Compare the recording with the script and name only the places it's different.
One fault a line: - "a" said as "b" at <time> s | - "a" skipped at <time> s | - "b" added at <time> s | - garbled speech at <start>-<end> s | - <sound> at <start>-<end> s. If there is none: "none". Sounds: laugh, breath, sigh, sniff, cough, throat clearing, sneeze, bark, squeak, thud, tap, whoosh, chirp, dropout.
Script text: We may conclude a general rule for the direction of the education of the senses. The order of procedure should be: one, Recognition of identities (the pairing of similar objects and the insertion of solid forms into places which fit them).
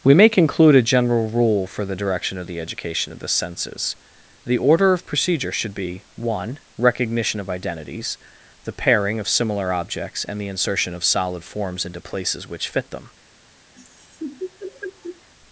- laugh at 13.8-15.3 s